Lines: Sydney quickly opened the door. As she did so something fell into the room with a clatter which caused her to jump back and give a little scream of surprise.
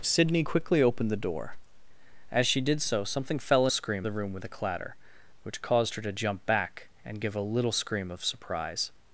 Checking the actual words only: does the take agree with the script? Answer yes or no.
no